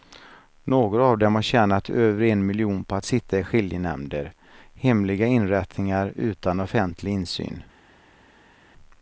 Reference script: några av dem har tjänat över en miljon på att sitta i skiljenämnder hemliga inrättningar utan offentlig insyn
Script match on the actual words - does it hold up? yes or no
yes